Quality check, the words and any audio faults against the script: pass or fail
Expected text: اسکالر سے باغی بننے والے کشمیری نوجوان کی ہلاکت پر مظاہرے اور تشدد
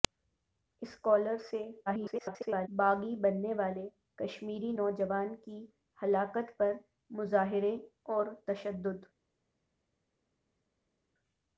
fail